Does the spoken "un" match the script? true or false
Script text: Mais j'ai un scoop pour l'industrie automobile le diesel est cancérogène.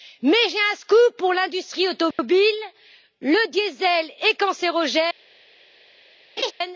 true